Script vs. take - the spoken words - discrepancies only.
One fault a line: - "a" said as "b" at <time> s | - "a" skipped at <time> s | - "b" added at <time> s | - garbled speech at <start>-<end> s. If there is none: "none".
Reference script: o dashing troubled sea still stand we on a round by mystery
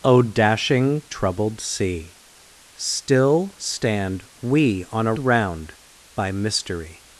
none